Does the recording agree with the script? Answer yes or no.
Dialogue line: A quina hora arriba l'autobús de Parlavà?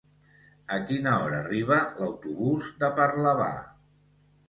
yes